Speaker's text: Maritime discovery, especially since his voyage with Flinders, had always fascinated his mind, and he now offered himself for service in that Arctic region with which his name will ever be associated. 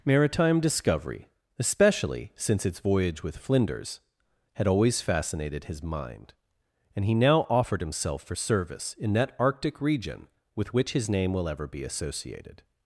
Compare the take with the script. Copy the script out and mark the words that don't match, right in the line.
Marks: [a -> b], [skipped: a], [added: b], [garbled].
Maritime discovery, especially since [his -> its] voyage with Flinders, had always fascinated his mind, and he now offered himself for service in that Arctic region with which his name will ever be associated.